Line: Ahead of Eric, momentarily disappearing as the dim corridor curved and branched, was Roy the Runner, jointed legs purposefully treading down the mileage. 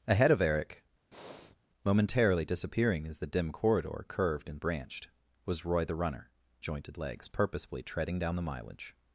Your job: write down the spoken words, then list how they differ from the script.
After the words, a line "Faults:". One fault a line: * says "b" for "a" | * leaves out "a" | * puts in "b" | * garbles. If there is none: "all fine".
Ahead of Eric, momentarily disappearing as the dim corridor curved and branched, was Roy the Runner, jointed legs purposefully treading down the mileage.
Faults:
all fine